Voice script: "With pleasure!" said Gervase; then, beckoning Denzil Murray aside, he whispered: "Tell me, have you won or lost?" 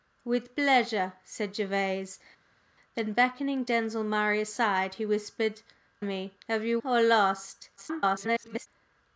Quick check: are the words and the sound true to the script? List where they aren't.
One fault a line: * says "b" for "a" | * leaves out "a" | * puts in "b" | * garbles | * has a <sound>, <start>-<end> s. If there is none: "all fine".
* leaves out "Tell"
* leaves out "won"
* garbles